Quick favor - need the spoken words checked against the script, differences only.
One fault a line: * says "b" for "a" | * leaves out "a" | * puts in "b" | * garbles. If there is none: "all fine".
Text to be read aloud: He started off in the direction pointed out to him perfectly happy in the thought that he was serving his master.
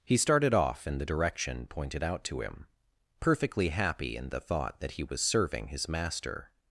all fine